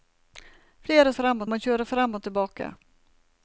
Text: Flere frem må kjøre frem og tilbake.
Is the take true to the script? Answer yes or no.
yes